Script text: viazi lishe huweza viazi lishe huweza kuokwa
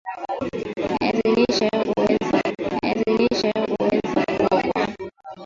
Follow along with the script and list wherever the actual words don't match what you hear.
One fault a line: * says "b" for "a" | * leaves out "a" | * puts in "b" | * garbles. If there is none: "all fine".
all fine